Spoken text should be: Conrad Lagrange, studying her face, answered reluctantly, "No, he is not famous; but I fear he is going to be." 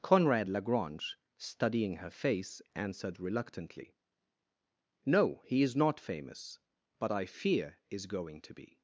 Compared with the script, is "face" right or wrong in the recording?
right